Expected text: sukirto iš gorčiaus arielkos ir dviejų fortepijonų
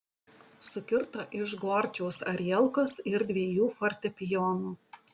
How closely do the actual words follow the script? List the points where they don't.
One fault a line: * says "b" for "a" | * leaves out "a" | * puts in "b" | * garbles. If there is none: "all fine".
all fine